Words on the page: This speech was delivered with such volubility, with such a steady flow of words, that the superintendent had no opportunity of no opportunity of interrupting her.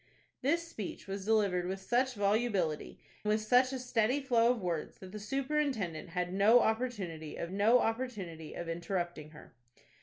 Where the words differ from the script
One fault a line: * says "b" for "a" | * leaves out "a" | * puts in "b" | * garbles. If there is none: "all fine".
all fine